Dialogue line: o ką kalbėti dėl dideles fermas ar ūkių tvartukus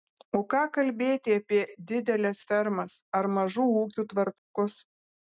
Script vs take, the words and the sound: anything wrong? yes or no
yes